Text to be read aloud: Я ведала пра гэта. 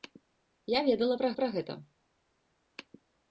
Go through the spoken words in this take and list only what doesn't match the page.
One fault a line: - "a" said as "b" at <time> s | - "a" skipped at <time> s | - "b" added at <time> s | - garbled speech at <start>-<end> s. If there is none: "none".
- "пра" added at 1.4 s